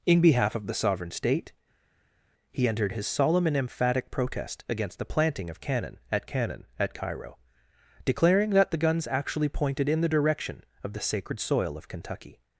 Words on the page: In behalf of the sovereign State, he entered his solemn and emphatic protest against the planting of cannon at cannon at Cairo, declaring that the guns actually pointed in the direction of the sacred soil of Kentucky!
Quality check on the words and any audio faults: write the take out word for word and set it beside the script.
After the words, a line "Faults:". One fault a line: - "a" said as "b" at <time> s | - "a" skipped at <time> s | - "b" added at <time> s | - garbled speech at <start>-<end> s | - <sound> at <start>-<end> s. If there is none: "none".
In behalf of the sovereign State, he entered his solemn and emphatic protest against the planting of cannon at cannon at Cairo, declaring that the guns actually pointed in the direction of the sacred soil of Kentucky!
Faults:
none